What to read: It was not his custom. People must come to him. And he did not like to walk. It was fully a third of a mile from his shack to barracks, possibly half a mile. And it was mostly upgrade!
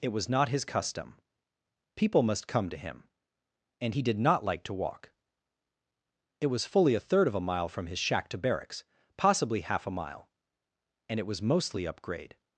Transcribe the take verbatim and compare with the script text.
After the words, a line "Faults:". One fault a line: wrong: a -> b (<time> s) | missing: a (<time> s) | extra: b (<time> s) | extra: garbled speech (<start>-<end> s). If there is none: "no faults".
It was not his custom. People must come to him. And he did not like to walk. It was fully a third of a mile from his shack to barracks, possibly half a mile. And it was mostly upgrade!
Faults:
no faults